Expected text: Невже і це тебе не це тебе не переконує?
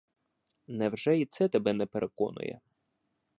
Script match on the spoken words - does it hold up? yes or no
no